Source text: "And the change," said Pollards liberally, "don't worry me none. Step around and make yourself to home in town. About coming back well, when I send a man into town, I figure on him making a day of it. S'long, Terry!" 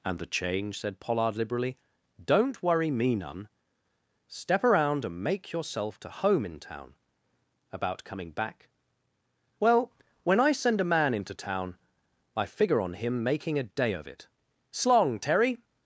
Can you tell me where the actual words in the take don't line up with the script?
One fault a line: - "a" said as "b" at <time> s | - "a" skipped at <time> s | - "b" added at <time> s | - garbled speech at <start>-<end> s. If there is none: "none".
- "Pollards" said as "Pollard" at 1.0 s